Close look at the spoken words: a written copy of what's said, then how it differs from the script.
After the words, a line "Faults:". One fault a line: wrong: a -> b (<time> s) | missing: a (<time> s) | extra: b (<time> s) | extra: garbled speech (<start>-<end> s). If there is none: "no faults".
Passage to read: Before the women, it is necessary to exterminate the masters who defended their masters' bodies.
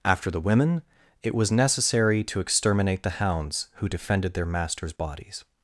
After the women, it was necessary to exterminate the hounds who defended their masters' bodies.
Faults:
wrong: Before -> After (0.0 s)
wrong: is -> was (1.4 s)
wrong: masters -> hounds (3.1 s)